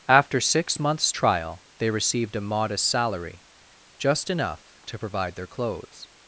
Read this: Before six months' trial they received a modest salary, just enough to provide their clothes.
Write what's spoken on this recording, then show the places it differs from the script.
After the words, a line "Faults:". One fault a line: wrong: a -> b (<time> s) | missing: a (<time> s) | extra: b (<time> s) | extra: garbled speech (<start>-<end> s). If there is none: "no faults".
After six months' trial they received a modest salary, just enough to provide their clothes.
Faults:
wrong: Before -> After (0.1 s)